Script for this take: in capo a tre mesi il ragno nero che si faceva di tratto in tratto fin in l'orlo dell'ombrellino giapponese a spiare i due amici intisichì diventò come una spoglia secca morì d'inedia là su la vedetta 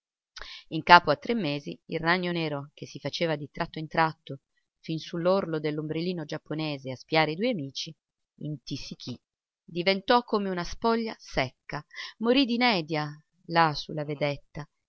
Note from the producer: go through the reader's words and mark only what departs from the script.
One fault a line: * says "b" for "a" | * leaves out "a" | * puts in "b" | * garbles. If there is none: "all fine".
* says "su" for "in"